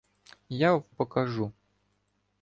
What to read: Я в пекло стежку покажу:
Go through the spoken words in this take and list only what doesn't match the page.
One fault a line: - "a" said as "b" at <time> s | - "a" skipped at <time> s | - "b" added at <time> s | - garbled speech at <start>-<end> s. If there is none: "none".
- "пекло стежку" skipped at 0.8 s